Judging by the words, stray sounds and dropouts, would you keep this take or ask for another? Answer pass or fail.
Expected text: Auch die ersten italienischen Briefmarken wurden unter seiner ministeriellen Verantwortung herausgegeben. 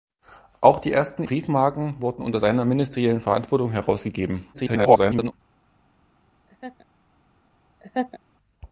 fail